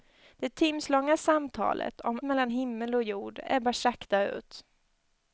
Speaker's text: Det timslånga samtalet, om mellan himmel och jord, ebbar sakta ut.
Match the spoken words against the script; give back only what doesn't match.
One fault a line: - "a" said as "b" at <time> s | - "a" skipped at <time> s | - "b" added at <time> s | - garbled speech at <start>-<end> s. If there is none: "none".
none